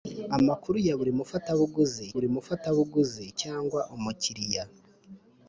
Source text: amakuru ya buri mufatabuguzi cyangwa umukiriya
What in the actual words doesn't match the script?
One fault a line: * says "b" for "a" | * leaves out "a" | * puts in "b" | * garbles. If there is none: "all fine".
* puts in "buri mufatabuguzi"